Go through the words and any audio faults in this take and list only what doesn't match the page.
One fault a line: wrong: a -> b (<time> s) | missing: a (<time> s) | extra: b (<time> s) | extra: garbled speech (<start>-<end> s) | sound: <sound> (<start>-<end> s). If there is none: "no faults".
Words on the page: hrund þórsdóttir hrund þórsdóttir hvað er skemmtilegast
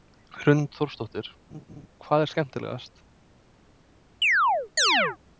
missing: hrund þórsdóttir (1.3 s)
sound: laugh (1.5-1.9 s)
sound: chirp (4.2-5.2 s)